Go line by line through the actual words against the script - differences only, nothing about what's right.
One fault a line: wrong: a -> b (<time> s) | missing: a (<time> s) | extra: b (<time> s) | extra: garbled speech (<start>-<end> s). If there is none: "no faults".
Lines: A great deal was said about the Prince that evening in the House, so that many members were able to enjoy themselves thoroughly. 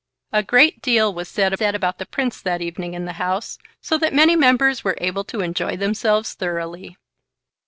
extra: said (1.5 s)